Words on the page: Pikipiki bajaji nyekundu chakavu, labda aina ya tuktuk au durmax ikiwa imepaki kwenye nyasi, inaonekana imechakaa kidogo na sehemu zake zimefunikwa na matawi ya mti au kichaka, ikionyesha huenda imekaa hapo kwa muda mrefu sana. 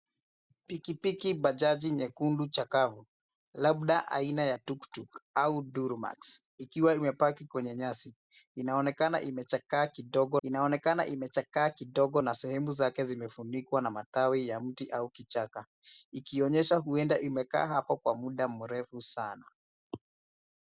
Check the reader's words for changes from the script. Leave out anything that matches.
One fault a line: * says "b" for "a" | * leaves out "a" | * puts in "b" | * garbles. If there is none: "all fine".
* puts in "inaonekana imechakaa kidogo"